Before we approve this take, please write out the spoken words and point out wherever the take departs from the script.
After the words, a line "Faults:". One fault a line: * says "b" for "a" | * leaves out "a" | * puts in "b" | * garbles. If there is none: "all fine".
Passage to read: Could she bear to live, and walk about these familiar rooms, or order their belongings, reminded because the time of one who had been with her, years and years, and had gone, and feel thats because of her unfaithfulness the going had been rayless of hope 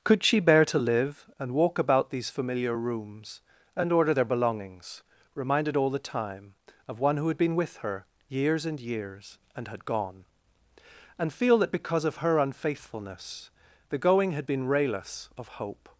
Could she bear to live, and walk about these familiar rooms, and order their belongings, reminded all the time of one who had been with her, years and years, and had gone, and feel that because of her unfaithfulness the going had been rayless of hope
Faults:
* says "and" for "or"
* says "all" for "because"
* says "that" for "thats"